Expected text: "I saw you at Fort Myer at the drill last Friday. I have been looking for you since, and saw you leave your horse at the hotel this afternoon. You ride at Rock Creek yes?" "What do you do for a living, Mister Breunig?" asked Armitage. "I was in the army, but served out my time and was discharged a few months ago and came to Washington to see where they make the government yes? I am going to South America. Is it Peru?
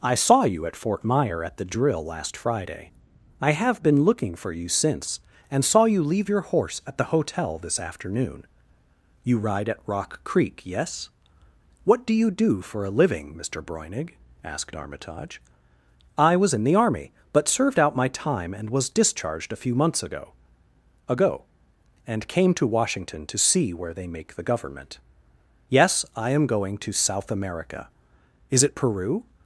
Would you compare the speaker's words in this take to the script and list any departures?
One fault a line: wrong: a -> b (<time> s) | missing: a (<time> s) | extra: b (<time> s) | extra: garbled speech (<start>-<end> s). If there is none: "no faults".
extra: ago (21.1 s)